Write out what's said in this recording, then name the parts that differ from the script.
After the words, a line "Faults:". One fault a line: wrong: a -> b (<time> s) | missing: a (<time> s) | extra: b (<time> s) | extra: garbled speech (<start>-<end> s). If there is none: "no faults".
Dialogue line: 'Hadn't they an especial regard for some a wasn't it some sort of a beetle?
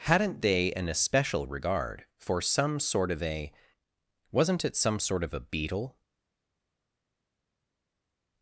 'Hadn't they an especial regard for some sort of a wasn't it some sort of a beetle?
Faults:
extra: sort of (2.8 s)